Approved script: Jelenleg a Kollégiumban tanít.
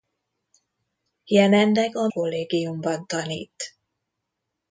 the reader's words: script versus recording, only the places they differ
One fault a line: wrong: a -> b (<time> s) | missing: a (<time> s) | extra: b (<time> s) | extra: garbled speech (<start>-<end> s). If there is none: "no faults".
no faults